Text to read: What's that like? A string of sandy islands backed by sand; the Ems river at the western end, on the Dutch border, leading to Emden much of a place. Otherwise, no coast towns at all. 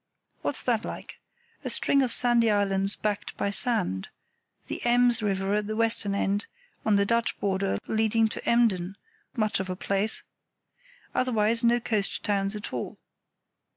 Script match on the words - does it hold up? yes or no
yes